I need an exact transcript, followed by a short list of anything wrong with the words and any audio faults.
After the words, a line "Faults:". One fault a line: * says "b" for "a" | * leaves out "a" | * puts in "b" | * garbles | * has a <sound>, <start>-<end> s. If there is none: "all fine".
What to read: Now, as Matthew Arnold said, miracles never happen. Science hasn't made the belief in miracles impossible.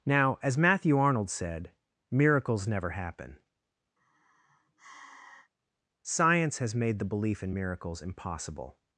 Now, as Matthew Arnold said, miracles never happen. Science has made the belief in miracles impossible.
Faults:
* has a sigh, 4.0-5.5 s
* says "has" for "hasn't"